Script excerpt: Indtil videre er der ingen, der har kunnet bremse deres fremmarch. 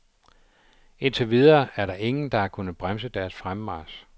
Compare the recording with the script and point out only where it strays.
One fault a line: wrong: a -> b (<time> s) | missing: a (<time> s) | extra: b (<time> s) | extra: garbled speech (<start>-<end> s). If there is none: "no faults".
no faults